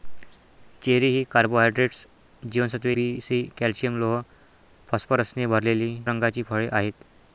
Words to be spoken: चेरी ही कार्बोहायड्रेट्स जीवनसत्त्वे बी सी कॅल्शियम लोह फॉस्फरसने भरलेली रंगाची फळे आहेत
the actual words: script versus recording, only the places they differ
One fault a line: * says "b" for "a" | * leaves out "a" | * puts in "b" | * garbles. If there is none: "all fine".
all fine